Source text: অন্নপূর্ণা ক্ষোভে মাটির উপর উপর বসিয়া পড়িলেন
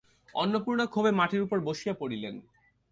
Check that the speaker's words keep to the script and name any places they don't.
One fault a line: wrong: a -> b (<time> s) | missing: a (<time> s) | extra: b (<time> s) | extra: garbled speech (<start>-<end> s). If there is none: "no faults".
missing: উপর (1.6 s)